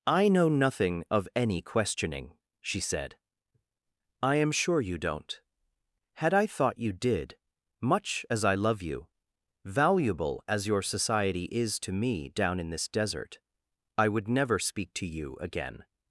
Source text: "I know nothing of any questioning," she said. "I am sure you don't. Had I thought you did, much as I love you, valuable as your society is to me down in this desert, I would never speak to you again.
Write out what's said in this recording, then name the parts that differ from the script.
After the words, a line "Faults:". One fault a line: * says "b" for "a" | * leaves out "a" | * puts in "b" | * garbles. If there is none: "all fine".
"I know nothing of any questioning," she said. "I am sure you don't. Had I thought you did, much as I love you, valuable as your society is to me down in this desert, I would never speak to you again.
Faults:
all fine